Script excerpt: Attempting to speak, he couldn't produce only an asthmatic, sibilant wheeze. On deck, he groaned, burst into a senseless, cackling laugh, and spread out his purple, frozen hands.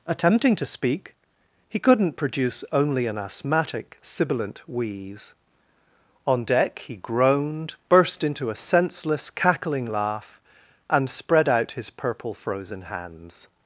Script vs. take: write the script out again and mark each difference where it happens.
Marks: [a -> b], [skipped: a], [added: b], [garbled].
Attempting to speak, he couldn't produce only an asthmatic, sibilant wheeze. On deck, he groaned, burst into a senseless, cackling laugh, and spread out his purple, frozen hands.